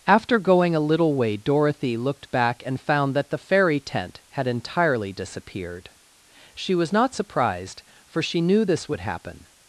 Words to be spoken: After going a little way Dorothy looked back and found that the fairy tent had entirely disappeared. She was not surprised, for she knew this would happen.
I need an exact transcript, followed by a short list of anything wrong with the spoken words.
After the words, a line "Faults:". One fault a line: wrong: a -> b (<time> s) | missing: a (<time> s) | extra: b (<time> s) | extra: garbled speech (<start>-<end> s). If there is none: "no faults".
After going a little way Dorothy looked back and found that the fairy tent had entirely disappeared. She was not surprised, for she knew this would happen.
Faults:
no faults